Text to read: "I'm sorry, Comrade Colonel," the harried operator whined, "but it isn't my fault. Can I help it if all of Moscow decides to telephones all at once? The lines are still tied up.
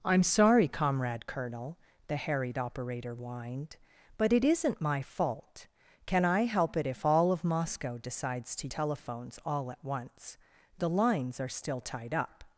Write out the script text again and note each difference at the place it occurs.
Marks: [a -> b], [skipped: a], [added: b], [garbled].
"I'm sorry, Comrade Colonel," the harried operator whined, "but it isn't my fault. Can I help it if all of Moscow decides to telephones all at once? The lines are still tied up.